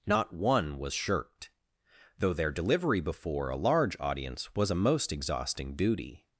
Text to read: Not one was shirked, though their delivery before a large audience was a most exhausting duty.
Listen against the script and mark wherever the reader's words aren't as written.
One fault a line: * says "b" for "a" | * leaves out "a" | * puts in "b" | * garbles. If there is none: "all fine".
all fine